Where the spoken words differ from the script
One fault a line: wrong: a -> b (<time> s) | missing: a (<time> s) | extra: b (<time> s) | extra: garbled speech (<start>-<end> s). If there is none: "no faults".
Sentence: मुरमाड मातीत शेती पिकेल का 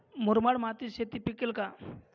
no faults